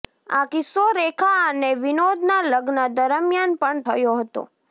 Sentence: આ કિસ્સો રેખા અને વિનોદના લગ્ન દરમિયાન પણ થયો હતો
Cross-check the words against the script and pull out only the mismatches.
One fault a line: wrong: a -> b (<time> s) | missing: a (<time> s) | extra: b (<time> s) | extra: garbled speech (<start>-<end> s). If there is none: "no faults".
no faults